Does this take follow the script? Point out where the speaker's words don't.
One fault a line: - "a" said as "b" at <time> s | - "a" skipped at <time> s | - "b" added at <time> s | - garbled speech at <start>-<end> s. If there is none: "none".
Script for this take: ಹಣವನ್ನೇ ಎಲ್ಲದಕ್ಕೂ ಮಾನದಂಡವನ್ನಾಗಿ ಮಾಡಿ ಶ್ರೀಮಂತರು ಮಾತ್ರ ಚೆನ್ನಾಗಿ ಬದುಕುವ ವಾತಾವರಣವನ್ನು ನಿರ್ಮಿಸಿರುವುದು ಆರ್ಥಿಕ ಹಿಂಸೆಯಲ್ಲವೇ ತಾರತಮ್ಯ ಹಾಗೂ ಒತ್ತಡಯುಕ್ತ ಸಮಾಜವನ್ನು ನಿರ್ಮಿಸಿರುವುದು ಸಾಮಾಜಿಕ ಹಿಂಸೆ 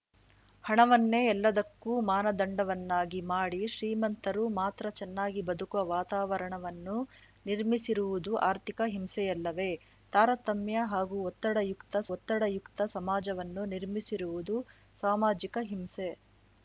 - "ಒತ್ತಡಯುಕ್ತ" added at 12.1 s